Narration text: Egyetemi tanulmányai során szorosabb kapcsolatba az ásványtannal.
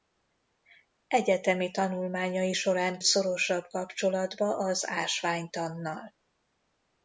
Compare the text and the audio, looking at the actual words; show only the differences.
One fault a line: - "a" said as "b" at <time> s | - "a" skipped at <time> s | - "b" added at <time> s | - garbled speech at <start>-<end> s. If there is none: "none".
none